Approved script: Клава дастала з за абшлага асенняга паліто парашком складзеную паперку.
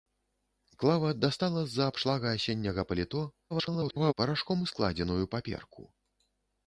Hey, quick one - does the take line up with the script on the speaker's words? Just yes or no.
no